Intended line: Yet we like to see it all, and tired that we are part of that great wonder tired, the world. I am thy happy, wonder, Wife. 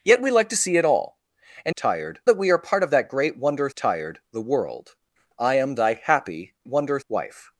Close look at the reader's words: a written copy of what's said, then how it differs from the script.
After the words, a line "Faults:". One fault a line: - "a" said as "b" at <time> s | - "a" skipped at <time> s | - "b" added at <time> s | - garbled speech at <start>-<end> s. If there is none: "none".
Yet we like to see it all, and tired that we are part of that great wonder tired, the world. I am thy happy, wonder, Wife.
Faults:
none